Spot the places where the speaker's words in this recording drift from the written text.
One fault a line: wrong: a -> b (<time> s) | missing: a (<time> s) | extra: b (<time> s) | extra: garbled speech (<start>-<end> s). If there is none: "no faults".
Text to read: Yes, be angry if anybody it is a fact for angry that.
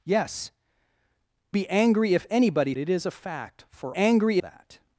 no faults